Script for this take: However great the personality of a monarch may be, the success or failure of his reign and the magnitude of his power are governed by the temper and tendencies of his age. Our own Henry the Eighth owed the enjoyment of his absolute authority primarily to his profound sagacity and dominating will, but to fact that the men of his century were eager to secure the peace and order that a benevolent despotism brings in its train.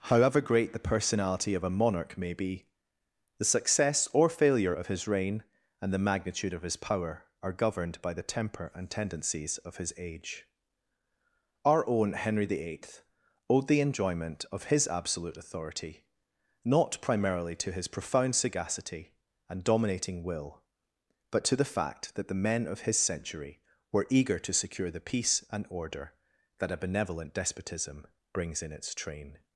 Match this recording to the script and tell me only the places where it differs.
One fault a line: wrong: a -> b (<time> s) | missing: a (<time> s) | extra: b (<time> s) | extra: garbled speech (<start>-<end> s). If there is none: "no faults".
extra: not (16.6 s)
extra: the (21.5 s)